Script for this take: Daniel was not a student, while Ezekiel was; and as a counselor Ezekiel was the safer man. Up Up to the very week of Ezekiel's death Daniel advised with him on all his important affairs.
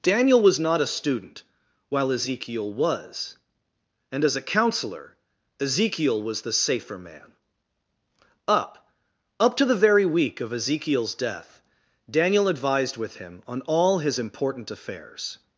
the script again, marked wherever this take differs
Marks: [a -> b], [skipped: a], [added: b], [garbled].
Daniel was not a student, while Ezekiel was; and as a counselor Ezekiel was the safer man. Up Up to the very week of Ezekiel's death Daniel advised with him on all his important affairs.